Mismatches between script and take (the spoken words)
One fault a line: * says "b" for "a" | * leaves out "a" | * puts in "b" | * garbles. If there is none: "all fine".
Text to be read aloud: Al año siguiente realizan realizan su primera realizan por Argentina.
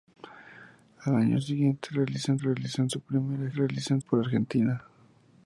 all fine